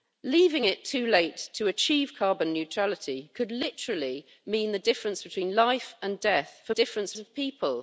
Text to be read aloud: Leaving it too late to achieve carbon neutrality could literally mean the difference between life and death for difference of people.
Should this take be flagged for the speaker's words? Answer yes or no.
no